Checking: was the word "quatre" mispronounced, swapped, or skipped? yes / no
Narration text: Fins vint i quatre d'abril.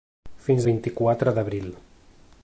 no